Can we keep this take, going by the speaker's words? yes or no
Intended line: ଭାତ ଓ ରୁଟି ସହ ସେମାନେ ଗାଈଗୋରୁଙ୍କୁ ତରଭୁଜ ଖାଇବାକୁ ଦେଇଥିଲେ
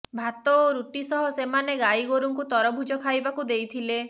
yes